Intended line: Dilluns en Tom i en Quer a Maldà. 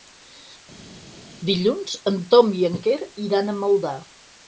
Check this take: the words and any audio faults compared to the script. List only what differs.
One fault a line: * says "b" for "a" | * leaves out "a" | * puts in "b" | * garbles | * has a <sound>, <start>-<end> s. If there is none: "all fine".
* puts in "iran"